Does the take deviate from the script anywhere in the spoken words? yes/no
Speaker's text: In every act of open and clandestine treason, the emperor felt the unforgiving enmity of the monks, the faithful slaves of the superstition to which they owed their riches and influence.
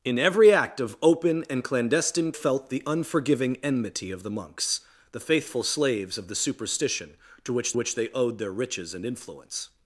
yes